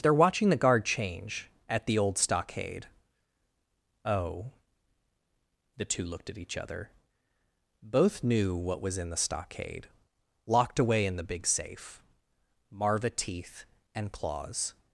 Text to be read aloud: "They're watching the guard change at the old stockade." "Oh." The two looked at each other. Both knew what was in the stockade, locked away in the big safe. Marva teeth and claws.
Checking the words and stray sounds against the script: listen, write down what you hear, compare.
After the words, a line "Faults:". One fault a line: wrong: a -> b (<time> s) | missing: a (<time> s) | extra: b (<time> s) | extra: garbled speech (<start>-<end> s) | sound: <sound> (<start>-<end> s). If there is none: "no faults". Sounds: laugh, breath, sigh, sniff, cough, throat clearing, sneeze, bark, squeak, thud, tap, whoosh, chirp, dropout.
"They're watching the guard change at the old stockade." "Oh." The two looked at each other. Both knew what was in the stockade, locked away in the big safe. Marva teeth and claws.
Faults:
no faults